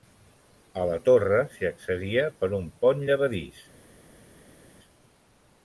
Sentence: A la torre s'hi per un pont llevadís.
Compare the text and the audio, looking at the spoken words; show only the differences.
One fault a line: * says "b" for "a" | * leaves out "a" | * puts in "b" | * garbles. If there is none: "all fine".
* puts in "accedia"